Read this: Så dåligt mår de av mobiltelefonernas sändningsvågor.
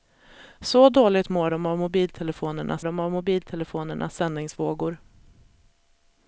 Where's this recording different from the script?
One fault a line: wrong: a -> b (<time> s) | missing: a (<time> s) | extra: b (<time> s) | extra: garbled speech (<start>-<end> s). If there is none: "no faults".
extra: de av mobiltelefonernas (2.8 s)